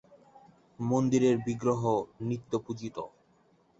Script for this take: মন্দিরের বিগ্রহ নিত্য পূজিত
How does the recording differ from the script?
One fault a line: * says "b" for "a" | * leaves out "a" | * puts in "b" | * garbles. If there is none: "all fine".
all fine